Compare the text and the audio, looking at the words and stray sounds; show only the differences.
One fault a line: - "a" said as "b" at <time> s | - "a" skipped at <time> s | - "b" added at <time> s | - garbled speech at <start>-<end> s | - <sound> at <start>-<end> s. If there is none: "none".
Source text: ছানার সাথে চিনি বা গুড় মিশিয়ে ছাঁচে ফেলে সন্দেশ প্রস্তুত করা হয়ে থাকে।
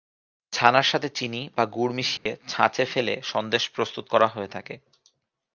- dropout at 2.2-2.3 s